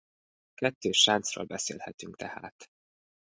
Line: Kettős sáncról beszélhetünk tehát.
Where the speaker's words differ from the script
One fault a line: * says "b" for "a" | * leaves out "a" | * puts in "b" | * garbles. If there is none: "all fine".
all fine